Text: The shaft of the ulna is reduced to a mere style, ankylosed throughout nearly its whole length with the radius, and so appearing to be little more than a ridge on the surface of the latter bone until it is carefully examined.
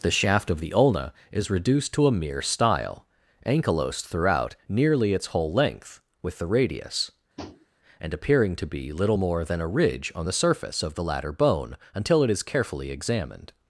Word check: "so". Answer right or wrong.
wrong